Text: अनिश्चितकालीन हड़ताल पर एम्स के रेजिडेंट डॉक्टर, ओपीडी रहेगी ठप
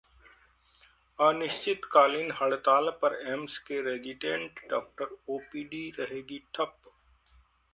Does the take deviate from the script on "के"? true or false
false